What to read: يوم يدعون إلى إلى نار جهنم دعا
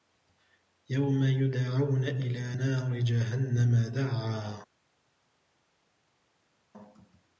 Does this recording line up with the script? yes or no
no